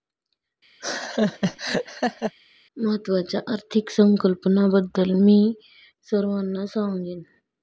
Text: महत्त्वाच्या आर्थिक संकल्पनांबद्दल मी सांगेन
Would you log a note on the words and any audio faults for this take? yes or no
yes